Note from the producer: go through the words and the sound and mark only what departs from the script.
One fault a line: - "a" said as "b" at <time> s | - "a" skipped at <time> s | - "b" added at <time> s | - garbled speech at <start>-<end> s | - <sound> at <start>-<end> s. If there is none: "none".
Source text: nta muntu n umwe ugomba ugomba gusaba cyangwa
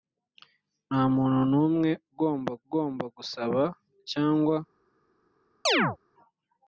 - chirp at 5.7-6.0 s